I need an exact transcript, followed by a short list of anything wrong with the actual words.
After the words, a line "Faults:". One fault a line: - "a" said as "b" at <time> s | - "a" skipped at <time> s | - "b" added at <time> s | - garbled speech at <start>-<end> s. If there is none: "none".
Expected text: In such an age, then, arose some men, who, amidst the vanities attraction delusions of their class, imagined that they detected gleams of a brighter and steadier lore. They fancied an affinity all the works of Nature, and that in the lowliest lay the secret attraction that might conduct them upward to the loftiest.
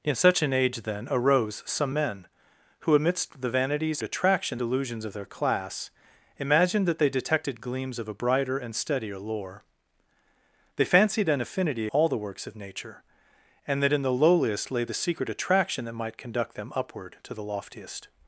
In such an age, then, arose some men, who, amidst the vanities attraction delusions of their class, imagined that they detected gleams of a brighter and steadier lore. They fancied an affinity all the works of Nature, and that in the lowliest lay the secret attraction that might conduct them upward to the loftiest.
Faults:
none